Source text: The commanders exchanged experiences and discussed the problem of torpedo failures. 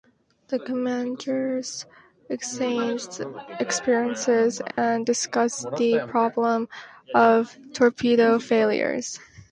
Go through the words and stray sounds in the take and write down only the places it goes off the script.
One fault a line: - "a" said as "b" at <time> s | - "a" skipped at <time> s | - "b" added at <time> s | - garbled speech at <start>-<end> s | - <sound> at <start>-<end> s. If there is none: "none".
- dropout at 4.7-4.8 s